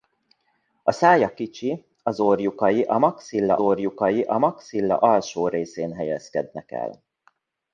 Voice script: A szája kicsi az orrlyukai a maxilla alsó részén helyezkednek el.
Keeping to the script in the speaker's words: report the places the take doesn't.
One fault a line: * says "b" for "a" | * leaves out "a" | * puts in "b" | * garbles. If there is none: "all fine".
* puts in "orrlyukai a maxilla"